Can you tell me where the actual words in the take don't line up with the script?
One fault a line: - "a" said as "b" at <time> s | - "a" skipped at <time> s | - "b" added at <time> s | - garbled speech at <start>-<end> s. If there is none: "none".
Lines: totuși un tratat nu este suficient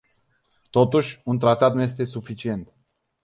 none